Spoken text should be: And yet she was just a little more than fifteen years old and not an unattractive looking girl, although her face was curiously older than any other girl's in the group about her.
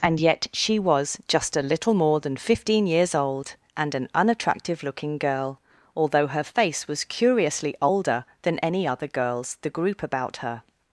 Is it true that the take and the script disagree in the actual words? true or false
true